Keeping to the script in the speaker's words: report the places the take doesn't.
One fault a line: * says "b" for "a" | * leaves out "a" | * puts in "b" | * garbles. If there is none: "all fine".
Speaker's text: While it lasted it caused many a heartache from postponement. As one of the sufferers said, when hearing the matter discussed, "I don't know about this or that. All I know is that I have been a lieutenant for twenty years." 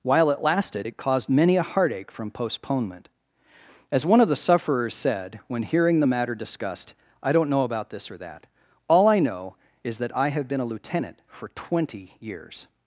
all fine